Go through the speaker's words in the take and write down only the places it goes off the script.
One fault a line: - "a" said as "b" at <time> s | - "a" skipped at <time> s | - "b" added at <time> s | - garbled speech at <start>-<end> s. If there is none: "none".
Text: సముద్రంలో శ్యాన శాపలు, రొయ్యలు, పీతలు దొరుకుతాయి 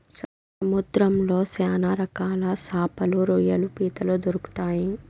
- "రకాల" added at 1.9 s